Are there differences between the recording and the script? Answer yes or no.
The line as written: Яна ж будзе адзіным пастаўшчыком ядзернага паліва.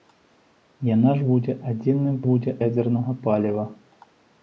yes